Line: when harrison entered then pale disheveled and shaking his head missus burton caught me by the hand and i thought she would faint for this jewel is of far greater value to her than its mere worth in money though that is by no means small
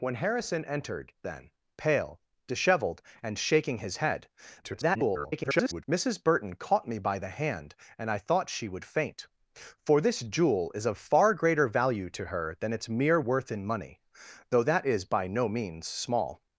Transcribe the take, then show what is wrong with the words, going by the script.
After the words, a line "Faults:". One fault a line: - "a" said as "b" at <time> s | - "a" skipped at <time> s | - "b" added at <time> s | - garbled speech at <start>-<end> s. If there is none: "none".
when harrison entered then pale disheveled and shaking his head [garbled] missus burton caught me by the hand and i thought she would faint for this jewel is of far greater value to her than its mere worth in money though that is by no means small
Faults:
- garbled speech at 4.6-5.8 s